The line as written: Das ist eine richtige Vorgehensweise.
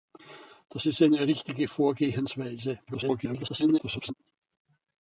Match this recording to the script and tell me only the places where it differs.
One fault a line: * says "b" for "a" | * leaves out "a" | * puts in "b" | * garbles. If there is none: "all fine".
* garbles